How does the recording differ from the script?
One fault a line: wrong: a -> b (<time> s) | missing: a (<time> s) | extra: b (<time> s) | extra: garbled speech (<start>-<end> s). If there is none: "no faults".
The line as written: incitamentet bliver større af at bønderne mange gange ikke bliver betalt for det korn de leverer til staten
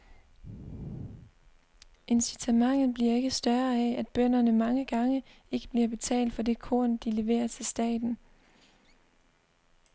extra: ikke (3.1 s)